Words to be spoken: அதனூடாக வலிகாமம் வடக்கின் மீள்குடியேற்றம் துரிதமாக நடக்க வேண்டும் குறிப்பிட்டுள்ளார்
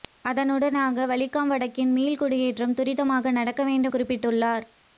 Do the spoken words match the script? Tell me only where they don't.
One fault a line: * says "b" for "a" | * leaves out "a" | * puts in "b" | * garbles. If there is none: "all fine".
all fine